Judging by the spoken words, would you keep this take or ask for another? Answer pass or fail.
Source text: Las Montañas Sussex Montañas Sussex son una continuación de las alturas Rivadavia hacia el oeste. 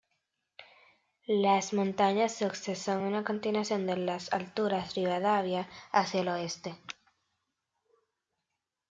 fail